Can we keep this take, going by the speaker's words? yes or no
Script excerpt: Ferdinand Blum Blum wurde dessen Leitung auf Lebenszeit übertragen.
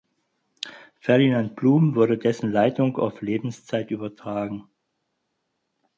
no